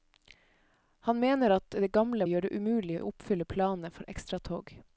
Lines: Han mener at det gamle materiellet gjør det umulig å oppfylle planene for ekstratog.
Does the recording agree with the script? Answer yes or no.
no